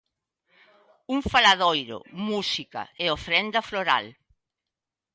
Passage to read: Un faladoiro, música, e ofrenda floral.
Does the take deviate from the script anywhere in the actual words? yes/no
no